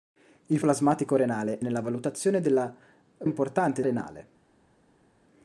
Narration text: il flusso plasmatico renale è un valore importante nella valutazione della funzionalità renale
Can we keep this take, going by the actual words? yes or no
no